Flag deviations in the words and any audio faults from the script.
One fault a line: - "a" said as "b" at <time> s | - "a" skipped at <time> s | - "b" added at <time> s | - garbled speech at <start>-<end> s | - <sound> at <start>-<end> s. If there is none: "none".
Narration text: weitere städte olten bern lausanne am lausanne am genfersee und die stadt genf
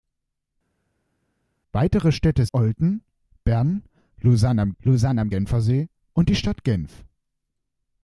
none